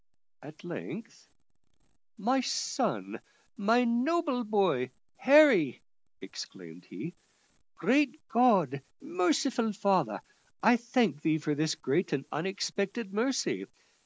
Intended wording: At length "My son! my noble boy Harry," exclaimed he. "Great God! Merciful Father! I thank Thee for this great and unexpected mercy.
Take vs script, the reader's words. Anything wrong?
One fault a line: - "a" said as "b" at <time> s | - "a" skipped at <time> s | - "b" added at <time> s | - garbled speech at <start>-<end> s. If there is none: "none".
none